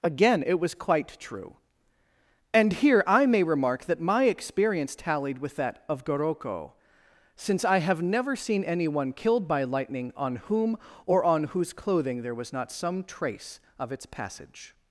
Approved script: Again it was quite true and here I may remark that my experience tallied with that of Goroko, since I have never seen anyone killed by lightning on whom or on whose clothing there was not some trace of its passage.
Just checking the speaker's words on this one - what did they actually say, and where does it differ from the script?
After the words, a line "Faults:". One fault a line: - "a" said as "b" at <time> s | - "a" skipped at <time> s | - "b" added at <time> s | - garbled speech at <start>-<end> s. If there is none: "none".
Again it was quite true and here I may remark that my experience tallied with that of Goroko, since I have never seen anyone killed by lightning on whom or on whose clothing there was not some trace of its passage.
Faults:
none